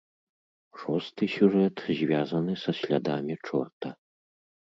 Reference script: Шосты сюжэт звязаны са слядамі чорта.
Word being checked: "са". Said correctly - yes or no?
yes